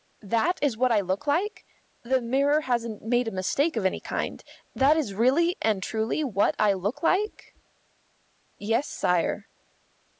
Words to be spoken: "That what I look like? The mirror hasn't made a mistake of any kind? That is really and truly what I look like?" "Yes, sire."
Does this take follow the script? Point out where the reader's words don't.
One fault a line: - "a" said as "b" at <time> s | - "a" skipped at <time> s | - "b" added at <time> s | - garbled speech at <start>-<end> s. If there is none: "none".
- "is" added at 0.6 s